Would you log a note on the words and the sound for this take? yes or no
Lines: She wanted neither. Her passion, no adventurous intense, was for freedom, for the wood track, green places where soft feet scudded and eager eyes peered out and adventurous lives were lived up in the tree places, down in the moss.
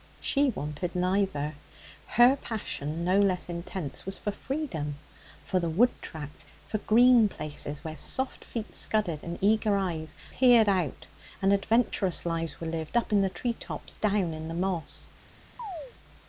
yes